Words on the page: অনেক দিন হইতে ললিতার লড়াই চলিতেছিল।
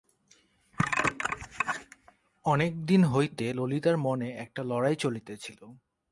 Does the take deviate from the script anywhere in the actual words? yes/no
yes